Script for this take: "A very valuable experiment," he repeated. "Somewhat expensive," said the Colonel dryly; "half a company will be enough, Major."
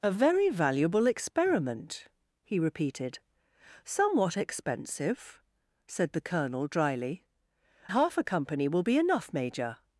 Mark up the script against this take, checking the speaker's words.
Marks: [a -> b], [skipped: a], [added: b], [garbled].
"A very valuable experiment," he repeated. "Somewhat expensive," said the Colonel dryly; "half a company will be enough, Major."